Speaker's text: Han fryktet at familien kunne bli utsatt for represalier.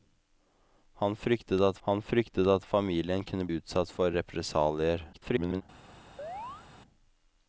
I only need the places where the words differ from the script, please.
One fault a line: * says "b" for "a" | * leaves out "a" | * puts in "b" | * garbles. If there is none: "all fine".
* puts in "han fryktet at"
* leaves out "bli"
* garbles